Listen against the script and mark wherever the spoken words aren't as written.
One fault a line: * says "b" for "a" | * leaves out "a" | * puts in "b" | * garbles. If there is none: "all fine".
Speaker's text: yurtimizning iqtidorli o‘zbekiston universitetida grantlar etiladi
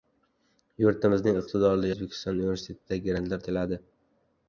all fine